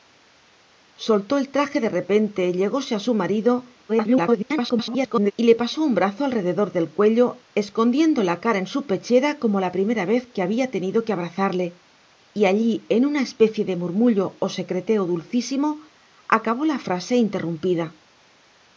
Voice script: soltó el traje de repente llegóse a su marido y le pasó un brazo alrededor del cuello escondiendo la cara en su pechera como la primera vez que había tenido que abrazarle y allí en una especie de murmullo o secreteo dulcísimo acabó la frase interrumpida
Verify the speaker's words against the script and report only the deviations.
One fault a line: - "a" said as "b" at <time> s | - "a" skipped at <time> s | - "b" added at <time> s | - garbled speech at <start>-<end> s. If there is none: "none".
- garbled speech at 3.9-5.3 s